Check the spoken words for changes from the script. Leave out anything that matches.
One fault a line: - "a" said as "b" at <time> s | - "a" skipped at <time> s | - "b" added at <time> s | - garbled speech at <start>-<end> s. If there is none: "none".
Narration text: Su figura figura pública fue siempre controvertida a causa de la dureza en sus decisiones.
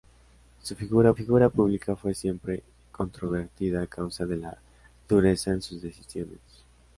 none